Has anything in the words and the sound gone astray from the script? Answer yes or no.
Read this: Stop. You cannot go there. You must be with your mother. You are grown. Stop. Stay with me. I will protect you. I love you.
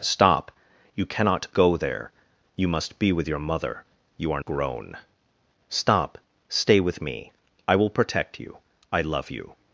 no